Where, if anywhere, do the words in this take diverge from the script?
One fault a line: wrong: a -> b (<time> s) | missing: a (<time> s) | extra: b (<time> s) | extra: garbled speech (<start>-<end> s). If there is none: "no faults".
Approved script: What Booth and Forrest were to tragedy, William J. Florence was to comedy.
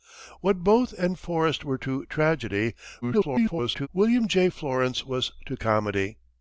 extra: garbled speech (3.0-3.9 s)